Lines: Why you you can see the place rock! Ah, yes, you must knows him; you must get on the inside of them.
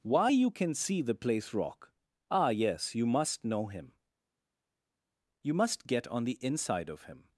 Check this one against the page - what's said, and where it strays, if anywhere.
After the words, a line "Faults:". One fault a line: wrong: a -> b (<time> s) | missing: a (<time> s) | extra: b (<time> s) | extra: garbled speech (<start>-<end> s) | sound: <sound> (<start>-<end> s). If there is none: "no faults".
Why you can see the place rock! Ah, yes, you must know him; you must get on the inside of him.
Faults:
missing: you (0.5 s)
wrong: knows -> know (3.4 s)
wrong: them -> him (7.0 s)